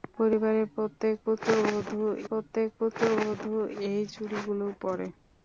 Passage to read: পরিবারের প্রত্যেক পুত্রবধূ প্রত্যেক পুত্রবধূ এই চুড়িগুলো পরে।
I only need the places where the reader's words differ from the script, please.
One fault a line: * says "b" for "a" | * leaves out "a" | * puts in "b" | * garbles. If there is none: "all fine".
all fine